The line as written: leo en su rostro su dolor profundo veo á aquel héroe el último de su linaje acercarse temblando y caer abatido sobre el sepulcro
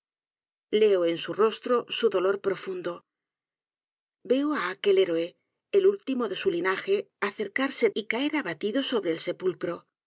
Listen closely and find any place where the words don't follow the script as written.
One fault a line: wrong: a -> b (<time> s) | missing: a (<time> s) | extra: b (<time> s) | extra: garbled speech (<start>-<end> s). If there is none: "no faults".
missing: temblando (7.9 s)